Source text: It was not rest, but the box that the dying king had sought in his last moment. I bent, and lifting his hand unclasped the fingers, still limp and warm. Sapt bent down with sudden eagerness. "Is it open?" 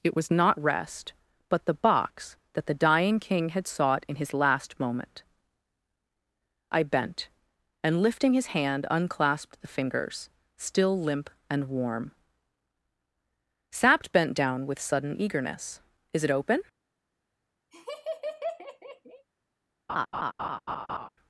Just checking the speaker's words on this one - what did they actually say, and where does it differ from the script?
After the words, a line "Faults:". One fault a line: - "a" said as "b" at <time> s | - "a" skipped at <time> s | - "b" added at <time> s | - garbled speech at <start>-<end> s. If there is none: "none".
It was not rest, but the box that the dying king had sought in his last moment. I bent, and lifting his hand unclasped the fingers, still limp and warm. Sapt bent down with sudden eagerness. "Is it open?"
Faults:
none